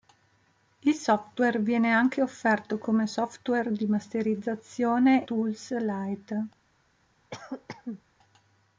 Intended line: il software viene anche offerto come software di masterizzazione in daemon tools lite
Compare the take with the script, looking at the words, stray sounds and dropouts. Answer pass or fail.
fail